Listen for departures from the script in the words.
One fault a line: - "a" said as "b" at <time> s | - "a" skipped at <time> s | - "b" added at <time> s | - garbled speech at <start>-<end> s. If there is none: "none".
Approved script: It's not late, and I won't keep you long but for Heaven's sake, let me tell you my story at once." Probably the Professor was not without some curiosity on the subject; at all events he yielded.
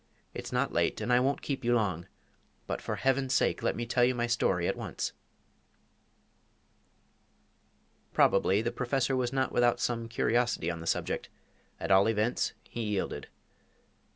none